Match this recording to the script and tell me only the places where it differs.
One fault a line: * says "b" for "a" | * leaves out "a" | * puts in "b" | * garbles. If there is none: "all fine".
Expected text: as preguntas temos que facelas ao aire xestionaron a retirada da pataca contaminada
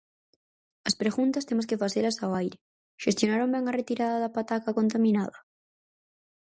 * puts in "ben"